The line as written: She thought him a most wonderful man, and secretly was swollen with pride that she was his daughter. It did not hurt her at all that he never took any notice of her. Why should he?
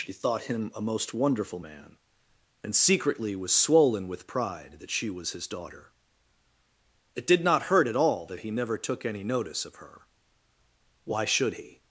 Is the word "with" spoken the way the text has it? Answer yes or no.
yes